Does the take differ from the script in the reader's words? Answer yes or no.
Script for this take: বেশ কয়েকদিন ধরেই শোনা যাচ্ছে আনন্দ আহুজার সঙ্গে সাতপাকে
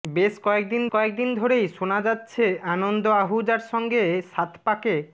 yes